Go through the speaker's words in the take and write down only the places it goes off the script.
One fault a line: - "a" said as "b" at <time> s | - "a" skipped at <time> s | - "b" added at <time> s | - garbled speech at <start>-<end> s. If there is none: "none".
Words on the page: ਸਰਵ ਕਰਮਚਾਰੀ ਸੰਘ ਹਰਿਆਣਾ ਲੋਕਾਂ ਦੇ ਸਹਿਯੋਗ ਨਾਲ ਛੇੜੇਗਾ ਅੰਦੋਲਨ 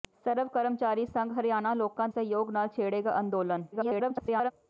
- "ਦੇ" skipped at 2.1 s
- garbled speech at 3.7-4.5 s